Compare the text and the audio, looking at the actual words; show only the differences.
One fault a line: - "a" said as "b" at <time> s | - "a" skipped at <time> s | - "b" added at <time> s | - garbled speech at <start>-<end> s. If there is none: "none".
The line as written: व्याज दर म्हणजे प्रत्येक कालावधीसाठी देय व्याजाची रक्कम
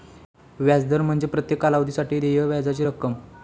none